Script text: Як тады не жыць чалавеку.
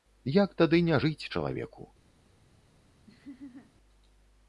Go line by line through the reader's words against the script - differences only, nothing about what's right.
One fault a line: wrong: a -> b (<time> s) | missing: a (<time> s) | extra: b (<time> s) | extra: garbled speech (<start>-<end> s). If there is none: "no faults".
no faults